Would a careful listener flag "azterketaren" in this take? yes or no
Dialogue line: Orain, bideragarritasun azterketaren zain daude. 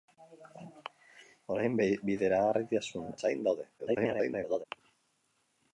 yes